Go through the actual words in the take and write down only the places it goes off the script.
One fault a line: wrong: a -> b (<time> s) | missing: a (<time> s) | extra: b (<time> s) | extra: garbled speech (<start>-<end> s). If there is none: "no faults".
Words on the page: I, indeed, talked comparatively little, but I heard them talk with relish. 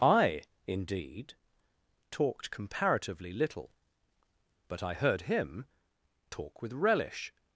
wrong: them -> him (5.2 s)